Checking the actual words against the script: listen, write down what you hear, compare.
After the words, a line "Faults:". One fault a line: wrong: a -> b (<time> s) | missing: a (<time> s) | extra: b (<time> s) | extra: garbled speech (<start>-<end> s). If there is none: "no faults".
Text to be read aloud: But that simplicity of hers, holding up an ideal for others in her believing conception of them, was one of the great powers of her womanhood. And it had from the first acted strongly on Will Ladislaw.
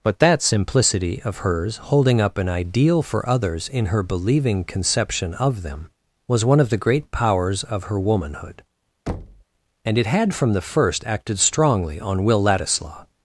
But that simplicity of hers, holding up an ideal for others in her believing conception of them, was one of the great powers of her womanhood. And it had from the first acted strongly on Will Ladislaw.
Faults:
no faults